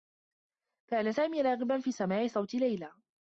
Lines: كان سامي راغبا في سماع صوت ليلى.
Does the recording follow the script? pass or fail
pass